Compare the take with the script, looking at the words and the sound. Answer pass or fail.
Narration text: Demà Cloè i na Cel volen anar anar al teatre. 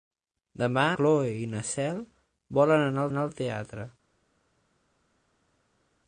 pass